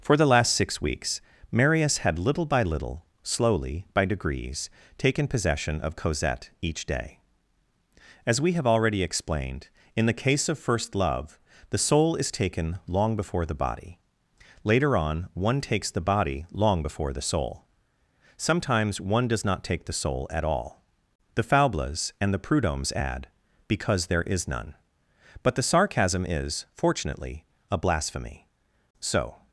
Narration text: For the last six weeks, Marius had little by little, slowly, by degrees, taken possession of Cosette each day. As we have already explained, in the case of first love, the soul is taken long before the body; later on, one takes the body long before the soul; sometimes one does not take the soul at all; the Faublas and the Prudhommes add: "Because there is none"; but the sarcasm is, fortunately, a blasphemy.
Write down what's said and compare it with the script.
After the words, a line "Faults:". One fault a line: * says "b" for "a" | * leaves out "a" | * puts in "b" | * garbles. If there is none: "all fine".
For the last six weeks, Marius had little by little, slowly, by degrees, taken possession of Cosette each day. As we have already explained, in the case of first love, the soul is taken long before the body; later on, one takes the body long before the soul; sometimes one does not take the soul at all; the Faublas and the Prudhommes add: "Because there is none"; but the sarcasm is, fortunately, a blasphemy. So
Faults:
* puts in "So"